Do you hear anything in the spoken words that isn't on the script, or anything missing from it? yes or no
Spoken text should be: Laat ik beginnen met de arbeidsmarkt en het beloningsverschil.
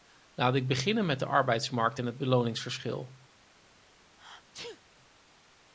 no